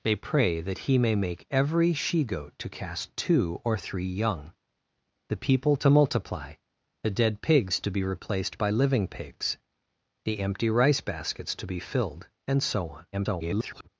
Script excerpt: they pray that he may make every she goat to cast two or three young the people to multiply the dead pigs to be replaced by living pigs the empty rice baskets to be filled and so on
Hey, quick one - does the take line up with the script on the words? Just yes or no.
no